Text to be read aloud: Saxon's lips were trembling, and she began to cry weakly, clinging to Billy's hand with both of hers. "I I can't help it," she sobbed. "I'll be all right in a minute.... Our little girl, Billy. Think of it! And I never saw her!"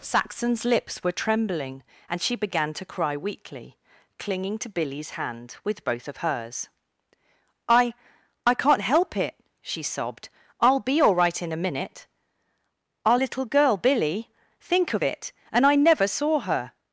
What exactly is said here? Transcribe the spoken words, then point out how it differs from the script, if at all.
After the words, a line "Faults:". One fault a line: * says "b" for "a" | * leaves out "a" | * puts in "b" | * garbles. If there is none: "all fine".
Saxon's lips were trembling, and she began to cry weakly, clinging to Billy's hand with both of hers. "I I can't help it," she sobbed. "I'll be all right in a minute.... Our little girl, Billy. Think of it! And I never saw her!"
Faults:
all fine